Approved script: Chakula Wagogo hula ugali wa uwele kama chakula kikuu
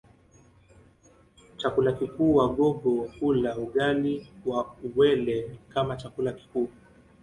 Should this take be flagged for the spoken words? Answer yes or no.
yes